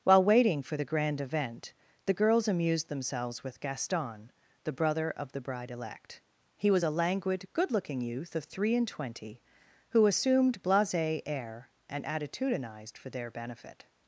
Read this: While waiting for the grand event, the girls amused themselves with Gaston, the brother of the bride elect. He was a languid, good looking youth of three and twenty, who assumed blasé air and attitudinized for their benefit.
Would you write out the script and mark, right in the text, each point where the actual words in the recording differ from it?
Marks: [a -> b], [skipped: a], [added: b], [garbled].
While waiting for the grand event, the girls amused themselves with Gaston, the brother of the bride elect. He was a languid, good looking youth of three and twenty, who assumed blasé air and attitudinized for their benefit.